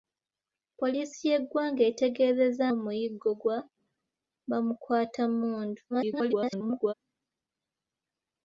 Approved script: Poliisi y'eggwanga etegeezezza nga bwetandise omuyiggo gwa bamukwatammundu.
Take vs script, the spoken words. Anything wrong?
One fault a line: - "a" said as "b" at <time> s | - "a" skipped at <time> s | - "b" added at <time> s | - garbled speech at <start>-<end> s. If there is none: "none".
- "nga bwetandise" skipped at 2.7 s
- garbled speech at 5.9-6.9 s